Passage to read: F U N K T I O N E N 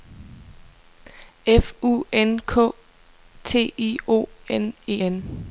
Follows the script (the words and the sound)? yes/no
yes